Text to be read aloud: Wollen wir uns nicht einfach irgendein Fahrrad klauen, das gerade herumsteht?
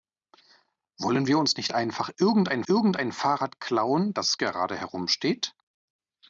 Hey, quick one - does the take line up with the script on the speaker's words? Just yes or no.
no